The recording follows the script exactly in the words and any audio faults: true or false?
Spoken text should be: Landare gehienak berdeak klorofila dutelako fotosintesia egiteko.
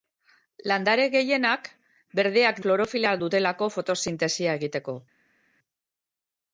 true